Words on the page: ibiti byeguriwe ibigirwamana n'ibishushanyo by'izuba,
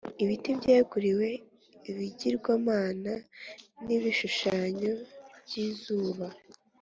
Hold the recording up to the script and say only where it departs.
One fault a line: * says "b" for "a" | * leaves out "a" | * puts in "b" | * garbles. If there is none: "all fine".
all fine